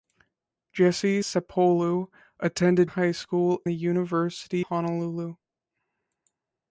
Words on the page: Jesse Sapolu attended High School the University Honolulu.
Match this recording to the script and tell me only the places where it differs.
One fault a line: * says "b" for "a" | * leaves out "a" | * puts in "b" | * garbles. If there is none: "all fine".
all fine